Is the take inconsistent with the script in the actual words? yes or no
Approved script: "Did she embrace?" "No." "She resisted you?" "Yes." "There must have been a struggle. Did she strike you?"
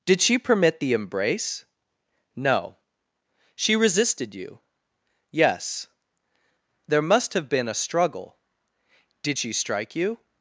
yes